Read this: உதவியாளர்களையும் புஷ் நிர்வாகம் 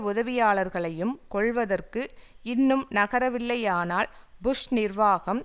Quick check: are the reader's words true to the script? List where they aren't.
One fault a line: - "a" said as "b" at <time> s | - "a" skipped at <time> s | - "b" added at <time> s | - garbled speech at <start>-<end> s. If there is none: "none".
- "கொல்வதற்கு இன்னும் நகரவில்லையானால்" added at 1.3 s